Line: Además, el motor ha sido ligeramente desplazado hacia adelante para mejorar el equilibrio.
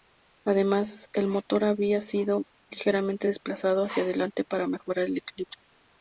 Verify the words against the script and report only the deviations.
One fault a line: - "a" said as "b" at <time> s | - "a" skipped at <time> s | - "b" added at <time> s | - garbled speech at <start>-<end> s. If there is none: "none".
- "ha" said as "había" at 1.6 s